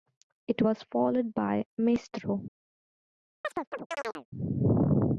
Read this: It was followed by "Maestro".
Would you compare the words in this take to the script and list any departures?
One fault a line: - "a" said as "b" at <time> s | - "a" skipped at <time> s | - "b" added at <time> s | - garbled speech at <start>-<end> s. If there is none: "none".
none